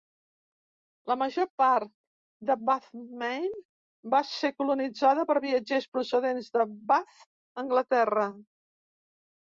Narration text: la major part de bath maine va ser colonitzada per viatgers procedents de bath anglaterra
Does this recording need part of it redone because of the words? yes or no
no